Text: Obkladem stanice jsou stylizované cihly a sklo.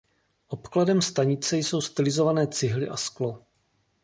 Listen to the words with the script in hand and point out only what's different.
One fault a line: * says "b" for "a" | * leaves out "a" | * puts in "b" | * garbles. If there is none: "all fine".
all fine